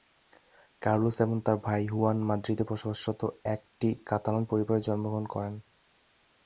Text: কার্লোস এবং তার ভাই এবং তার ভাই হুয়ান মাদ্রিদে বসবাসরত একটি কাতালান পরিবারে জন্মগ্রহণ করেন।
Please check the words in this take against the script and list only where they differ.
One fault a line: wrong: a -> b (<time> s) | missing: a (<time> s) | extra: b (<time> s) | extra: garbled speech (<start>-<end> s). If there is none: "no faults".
missing: এবং তার ভাই (1.8 s)